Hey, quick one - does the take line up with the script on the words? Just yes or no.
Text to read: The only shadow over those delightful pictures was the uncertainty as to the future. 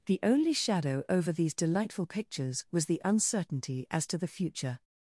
no